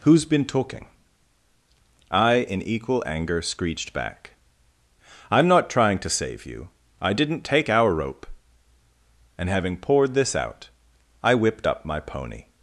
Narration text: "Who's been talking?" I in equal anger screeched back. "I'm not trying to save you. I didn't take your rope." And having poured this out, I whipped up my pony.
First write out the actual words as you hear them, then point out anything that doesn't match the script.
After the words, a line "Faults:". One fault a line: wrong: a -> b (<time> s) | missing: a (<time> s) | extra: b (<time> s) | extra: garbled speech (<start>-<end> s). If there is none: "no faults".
"Who's been talking?" I in equal anger screeched back. "I'm not trying to save you. I didn't take our rope." And having poured this out, I whipped up my pony.
Faults:
wrong: your -> our (7.7 s)